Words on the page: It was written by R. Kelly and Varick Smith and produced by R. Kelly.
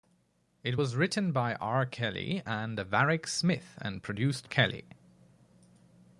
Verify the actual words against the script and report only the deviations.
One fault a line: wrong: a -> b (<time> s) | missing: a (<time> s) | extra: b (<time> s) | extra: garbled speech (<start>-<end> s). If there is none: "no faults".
missing: by R (4.4 s)